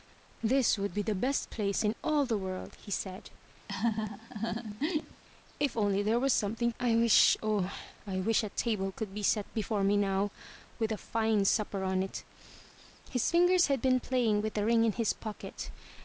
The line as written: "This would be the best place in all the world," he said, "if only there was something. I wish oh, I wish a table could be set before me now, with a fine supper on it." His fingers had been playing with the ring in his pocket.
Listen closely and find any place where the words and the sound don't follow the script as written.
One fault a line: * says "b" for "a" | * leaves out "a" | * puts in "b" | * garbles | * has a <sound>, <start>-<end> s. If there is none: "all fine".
* has a laugh, 3.7-5.2 s